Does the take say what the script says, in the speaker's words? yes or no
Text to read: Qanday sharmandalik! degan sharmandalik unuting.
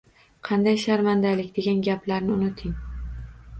no